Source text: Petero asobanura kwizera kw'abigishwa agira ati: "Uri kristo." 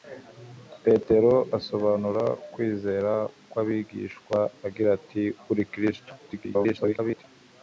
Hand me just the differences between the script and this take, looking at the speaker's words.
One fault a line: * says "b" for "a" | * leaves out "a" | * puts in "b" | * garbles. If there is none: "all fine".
* garbles